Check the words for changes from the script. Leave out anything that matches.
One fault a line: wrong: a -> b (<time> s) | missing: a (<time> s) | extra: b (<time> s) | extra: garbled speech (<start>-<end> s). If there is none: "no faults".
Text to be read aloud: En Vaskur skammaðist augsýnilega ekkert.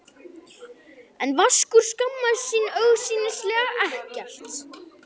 extra: sín (2.5 s)